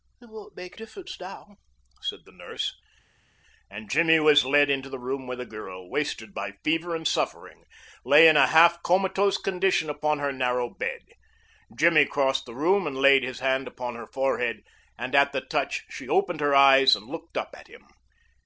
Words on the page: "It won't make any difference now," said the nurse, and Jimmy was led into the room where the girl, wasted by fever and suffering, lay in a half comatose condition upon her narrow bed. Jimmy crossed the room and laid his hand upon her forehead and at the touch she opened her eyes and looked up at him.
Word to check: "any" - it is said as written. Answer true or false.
false